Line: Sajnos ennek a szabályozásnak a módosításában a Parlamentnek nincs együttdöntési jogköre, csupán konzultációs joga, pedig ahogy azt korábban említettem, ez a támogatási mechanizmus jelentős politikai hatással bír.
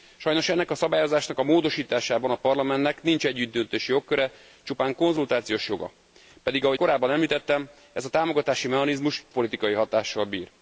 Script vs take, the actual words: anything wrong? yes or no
yes